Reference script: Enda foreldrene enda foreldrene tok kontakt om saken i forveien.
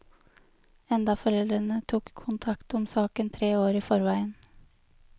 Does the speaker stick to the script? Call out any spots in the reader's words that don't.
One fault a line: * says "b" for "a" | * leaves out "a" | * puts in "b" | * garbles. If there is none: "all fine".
* leaves out "enda foreldrene"
* puts in "tre år"